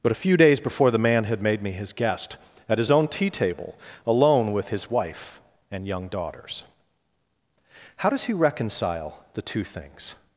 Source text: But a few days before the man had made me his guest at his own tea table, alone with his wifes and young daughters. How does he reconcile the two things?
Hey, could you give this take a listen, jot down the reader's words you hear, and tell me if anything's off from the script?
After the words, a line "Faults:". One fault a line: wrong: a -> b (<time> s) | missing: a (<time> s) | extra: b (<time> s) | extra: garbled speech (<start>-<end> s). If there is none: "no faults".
But a few days before the man had made me his guest at his own tea table, alone with his wife and young daughters. How does he reconcile the two things?
Faults:
wrong: wifes -> wife (4.9 s)